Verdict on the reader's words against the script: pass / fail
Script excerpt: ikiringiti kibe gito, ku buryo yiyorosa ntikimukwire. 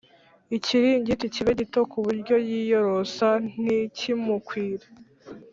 pass